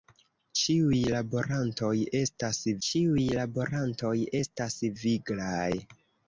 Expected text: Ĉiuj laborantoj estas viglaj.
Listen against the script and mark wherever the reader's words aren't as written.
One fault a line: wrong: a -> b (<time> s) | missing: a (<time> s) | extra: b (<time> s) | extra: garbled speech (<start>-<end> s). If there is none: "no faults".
extra: ĉiuj laborantoj estas (2.9 s)